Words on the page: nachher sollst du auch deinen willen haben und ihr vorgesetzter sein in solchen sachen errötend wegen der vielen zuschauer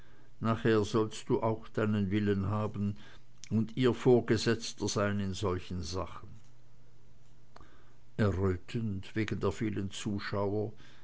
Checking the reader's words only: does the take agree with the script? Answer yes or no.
yes